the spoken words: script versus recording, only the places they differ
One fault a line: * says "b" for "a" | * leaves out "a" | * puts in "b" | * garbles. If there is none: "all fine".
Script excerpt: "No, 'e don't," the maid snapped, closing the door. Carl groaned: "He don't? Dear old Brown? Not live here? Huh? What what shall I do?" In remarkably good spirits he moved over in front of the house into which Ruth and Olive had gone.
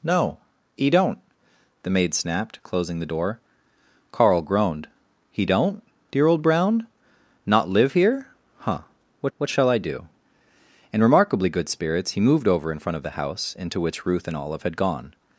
all fine